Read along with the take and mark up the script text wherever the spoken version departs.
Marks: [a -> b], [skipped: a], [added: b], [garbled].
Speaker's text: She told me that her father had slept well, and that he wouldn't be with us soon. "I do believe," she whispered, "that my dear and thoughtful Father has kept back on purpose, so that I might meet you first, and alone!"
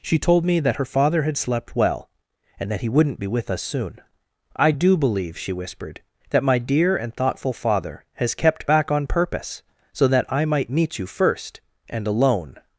She told me that her father had slept well, and that he wouldn't be with us soon. "I do believe," she whispered, "that my dear and thoughtful Father has kept back on purpose, so that I might meet you first, and alone!"